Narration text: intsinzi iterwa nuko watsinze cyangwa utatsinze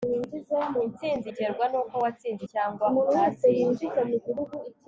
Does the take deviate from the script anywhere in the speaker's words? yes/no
no